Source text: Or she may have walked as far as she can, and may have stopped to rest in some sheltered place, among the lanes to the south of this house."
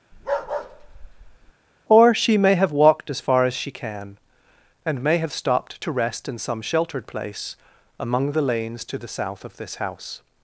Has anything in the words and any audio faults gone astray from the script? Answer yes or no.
yes